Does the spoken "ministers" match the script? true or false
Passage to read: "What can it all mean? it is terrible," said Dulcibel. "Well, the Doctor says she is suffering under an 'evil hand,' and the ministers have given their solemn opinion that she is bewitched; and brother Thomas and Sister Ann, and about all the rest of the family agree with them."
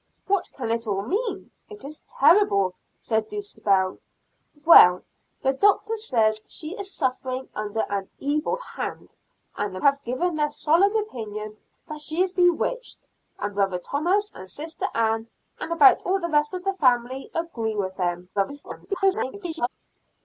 false